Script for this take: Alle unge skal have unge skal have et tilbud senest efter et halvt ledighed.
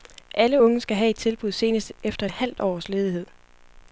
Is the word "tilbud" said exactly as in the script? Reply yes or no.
yes